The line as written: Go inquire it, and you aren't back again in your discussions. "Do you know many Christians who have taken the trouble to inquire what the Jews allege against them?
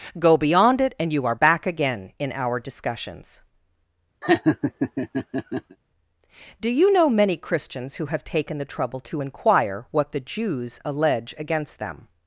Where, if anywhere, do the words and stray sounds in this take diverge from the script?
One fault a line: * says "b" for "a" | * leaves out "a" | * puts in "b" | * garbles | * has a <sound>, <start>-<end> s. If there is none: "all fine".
* says "beyond" for "inquire"
* says "are" for "aren't"
* says "our" for "your"
* has a laugh, 4.2-5.8 s